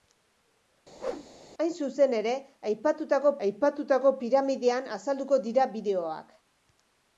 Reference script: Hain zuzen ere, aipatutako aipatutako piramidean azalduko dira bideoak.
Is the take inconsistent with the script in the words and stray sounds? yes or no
yes